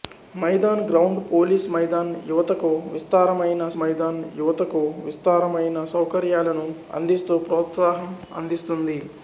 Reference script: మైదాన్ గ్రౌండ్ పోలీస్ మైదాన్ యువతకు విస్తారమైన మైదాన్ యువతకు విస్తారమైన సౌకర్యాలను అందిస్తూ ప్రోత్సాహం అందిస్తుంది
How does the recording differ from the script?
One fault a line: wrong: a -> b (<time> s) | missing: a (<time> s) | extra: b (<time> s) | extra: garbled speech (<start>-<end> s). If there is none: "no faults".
no faults